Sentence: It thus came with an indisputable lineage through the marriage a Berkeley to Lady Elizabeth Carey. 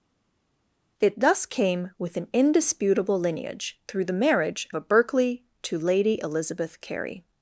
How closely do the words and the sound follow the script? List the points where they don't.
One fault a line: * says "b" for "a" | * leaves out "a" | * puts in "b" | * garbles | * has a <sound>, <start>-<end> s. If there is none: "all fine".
all fine